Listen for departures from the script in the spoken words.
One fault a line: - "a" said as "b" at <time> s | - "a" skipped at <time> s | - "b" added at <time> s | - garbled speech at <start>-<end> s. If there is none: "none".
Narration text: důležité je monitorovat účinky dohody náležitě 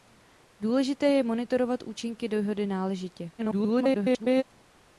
- garbled speech at 3.4-4.4 s